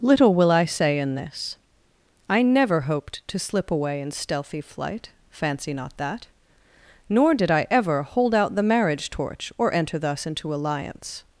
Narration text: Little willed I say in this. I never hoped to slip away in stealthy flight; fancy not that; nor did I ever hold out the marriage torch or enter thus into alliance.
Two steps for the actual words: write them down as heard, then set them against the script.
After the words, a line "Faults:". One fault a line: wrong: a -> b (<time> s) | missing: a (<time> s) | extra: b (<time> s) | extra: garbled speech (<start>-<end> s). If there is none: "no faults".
Little will I say in this. I never hoped to slip away in stealthy flight; fancy not that; nor did I ever hold out the marriage torch or enter thus into alliance.
Faults:
wrong: willed -> will (0.3 s)